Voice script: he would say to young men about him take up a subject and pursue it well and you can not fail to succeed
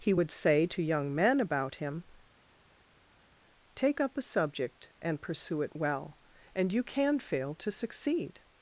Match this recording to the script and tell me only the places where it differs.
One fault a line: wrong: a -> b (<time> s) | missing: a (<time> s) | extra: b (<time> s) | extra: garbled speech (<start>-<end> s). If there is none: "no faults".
missing: not (7.2 s)